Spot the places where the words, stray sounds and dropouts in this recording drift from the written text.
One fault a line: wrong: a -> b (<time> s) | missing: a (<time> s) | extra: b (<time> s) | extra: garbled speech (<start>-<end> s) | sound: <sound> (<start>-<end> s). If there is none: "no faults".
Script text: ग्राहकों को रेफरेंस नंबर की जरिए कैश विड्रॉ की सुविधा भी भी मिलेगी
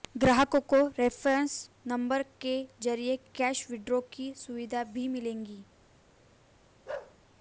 wrong: की -> के (2.4 s)
missing: भी (5.1 s)
sound: bark (6.9-7.2 s)